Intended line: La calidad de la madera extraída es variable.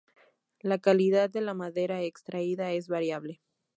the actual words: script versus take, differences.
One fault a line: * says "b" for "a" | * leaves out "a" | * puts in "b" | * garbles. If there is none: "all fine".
all fine